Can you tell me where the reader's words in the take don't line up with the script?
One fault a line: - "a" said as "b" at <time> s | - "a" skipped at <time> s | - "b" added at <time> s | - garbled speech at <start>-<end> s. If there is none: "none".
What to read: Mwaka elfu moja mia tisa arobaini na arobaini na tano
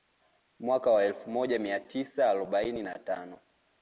- "wa" added at 0.9 s
- "arobaini na" skipped at 3.0 s